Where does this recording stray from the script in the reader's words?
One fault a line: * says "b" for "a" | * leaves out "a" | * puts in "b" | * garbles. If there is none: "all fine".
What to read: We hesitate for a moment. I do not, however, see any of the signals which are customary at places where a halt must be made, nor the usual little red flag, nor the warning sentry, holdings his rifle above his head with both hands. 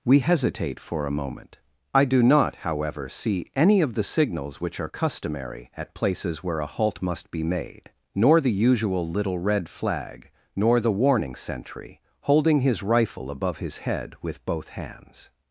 * says "holding" for "holdings"